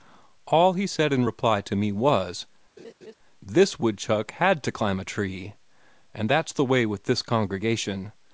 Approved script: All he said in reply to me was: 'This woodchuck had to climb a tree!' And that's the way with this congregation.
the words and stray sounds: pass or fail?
fail